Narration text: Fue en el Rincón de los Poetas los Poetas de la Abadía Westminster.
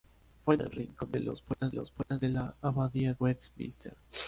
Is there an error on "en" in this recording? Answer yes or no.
no